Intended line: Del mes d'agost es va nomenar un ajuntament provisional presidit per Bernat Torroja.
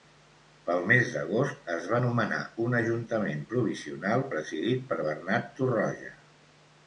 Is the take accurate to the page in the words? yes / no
no